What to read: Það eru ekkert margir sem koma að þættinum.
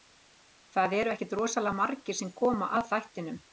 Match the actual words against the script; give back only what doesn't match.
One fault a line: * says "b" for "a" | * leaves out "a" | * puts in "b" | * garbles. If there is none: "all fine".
* puts in "rosalega"